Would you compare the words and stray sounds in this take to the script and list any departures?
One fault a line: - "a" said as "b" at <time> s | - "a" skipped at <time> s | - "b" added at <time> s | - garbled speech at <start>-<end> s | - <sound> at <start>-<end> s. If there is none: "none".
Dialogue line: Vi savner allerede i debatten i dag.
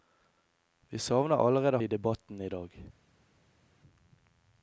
none